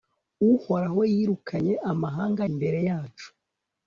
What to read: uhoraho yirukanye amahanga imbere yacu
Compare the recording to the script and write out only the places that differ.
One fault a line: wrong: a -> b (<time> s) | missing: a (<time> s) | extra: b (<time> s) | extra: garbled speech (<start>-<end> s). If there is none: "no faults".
no faults